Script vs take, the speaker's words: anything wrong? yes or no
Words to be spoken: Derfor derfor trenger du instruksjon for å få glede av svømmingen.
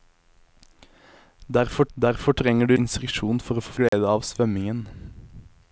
no